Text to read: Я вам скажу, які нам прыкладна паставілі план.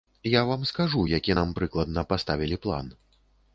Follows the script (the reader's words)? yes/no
yes